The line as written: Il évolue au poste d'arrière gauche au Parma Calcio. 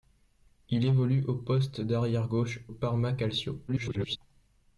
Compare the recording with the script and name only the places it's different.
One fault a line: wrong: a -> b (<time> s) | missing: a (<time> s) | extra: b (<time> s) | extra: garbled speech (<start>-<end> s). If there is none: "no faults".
missing: au (2.6 s)
extra: garbled speech (3.7-4.2 s)